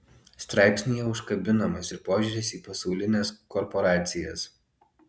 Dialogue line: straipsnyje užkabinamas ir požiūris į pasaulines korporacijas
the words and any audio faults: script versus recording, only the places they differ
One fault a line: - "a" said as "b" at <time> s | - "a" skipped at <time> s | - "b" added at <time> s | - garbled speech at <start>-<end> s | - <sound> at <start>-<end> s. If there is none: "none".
none